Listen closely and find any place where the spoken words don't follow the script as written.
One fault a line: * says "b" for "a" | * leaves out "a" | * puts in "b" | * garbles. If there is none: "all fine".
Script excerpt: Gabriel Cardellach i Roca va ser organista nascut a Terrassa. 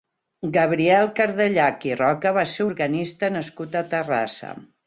all fine